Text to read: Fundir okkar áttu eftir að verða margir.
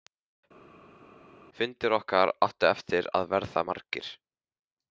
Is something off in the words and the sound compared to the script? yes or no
no